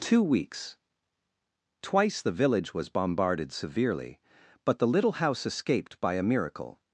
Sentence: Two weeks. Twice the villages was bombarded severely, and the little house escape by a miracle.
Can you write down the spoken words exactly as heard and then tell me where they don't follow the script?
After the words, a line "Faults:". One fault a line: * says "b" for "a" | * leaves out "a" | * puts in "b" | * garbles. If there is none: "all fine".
Two weeks. Twice the village was bombarded severely, but the little house escaped by a miracle.
Faults:
* says "village" for "villages"
* says "but" for "and"
* says "escaped" for "escape"